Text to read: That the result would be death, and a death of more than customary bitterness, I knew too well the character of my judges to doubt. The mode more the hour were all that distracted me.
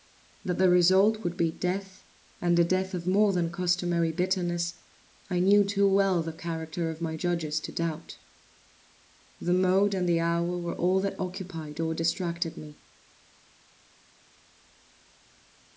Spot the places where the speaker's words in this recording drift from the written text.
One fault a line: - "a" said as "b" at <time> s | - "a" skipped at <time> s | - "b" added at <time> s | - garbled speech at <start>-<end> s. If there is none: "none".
- "more" said as "and" at 9.9 s
- "occupied or" added at 11.2 s